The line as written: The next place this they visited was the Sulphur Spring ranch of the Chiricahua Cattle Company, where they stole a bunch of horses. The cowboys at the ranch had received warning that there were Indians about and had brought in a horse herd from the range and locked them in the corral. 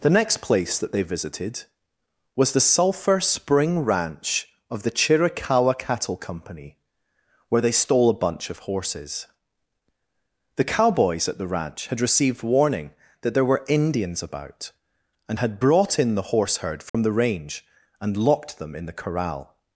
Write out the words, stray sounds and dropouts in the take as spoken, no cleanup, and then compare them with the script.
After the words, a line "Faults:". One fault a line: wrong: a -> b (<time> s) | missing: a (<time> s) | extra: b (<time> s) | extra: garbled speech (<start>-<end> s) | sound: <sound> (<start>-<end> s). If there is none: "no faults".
The next place that they visited was the Sulphur Spring ranch of the Chiricahua Cattle Company, where they stole a bunch of horses. The cowboys at the ranch had received warning that there were Indians about and had brought in the horse herd from the range and locked them in the corral.
Faults:
wrong: this -> that (0.8 s)
wrong: a -> the (16.1 s)
sound: dropout (16.9-16.9 s)